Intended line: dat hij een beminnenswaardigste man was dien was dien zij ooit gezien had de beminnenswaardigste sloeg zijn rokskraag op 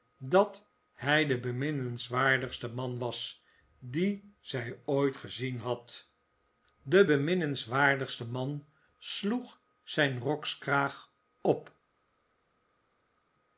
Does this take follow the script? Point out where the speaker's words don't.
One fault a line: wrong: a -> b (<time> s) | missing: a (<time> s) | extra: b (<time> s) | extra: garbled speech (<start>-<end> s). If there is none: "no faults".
wrong: een -> de (1.2 s)
missing: was dien (4.3 s)
extra: man (8.2 s)